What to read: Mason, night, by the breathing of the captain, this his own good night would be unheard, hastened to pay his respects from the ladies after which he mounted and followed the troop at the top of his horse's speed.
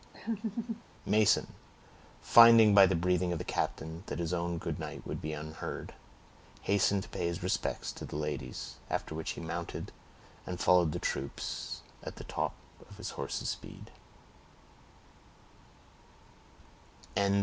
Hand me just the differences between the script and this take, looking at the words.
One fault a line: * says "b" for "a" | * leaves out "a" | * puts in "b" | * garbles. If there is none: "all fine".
* says "finding" for "night"
* says "that" for "this"
* says "to" for "from"